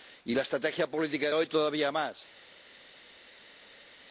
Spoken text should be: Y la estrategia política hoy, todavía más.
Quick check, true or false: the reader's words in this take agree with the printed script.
true